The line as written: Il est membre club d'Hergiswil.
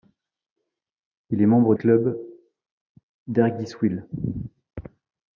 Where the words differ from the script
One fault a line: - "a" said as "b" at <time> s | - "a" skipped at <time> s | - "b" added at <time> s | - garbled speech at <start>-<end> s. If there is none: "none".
none